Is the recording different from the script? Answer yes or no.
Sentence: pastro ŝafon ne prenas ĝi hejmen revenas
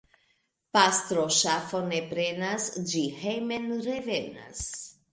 no